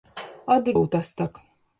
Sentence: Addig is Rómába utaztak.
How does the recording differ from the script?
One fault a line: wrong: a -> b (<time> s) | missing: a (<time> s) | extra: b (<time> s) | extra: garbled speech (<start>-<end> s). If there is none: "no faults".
missing: is Rómába (0.8 s)